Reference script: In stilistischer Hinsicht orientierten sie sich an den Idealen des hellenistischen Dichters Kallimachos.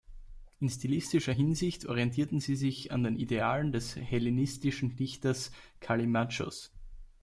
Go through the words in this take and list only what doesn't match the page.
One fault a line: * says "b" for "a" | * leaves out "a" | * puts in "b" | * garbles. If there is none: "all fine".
all fine